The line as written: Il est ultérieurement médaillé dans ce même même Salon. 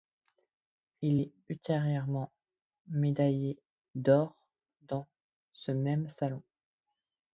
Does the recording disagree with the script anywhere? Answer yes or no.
yes